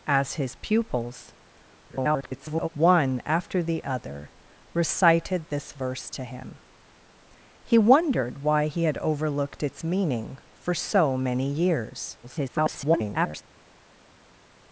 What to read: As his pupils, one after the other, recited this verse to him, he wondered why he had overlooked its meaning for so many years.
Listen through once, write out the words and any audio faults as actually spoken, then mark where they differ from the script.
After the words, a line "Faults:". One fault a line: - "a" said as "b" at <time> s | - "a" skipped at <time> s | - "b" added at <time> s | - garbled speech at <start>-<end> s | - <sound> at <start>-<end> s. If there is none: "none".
As his pupils, [garbled] one after the other, recited this verse to him, he wondered why he had overlooked its meaning for so many years. [garbled]
Faults:
- garbled speech at 1.9-2.7 s
- garbled speech at 12.2-13.4 s